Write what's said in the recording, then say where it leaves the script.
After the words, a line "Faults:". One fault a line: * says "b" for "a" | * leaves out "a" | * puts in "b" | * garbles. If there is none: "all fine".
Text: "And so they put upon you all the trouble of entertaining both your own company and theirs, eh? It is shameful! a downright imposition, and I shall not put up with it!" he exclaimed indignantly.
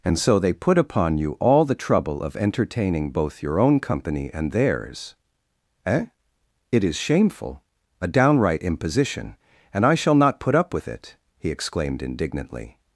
"And so they put upon you all the trouble of entertaining both your own company and theirs, eh? It is shameful! a downright imposition, and I shall not put up with it!" he exclaimed indignantly.
Faults:
all fine